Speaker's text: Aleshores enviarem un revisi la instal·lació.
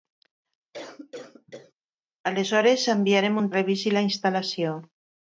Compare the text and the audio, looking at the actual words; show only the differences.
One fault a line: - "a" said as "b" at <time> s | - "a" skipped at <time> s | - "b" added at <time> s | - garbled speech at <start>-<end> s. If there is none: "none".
none